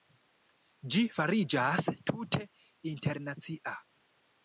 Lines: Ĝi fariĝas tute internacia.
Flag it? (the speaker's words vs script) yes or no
no